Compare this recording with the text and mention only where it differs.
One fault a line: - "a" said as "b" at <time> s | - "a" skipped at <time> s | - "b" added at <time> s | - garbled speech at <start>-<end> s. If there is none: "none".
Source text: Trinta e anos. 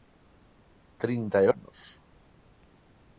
none